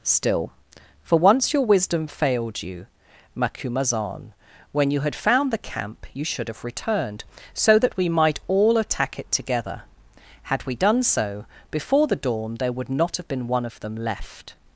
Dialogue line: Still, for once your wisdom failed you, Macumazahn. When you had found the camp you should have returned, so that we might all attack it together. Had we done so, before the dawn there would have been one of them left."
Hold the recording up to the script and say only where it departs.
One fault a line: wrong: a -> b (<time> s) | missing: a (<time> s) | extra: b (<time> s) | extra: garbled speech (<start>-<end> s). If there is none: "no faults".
extra: not (12.9 s)